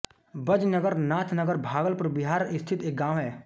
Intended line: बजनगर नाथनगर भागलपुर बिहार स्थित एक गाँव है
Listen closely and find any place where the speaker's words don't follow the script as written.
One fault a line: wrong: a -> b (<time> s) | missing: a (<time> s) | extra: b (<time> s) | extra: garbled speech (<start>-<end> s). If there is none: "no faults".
no faults